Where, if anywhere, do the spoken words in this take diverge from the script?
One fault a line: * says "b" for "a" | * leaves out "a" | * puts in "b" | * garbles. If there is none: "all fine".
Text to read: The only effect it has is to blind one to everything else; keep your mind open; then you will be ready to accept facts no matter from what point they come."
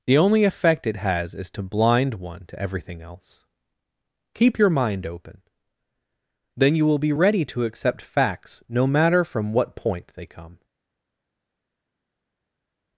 all fine